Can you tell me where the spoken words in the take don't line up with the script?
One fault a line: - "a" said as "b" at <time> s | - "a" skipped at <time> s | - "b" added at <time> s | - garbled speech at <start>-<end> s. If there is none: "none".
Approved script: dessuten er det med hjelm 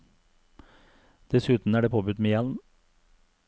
- "påbudt" added at 1.9 s